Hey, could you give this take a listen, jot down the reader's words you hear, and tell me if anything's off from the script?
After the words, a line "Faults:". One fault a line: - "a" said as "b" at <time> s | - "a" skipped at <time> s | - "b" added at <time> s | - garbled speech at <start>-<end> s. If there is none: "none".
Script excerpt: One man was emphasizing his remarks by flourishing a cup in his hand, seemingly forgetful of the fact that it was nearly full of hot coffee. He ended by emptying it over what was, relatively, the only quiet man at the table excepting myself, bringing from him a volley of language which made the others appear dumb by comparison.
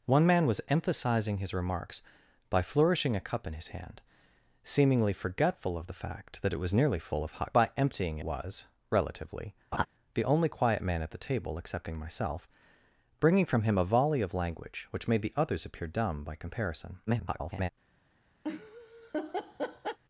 One man was emphasizing his remarks by flourishing a cup in his hand, seemingly forgetful of the fact that it was nearly full of hot by emptying was, relatively, the only quiet man at the table excepting myself, bringing from him a volley of language which made the others appear dumb by comparison. [garbled]
Faults:
- "coffee He ended" skipped at 7.5 s
- "it over what" skipped at 8.2 s
- garbled speech at 17.1-17.7 s